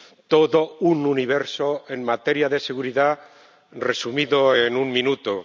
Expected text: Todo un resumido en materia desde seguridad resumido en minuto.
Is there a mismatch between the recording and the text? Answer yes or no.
yes